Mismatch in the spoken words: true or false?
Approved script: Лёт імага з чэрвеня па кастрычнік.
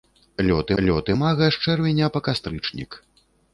true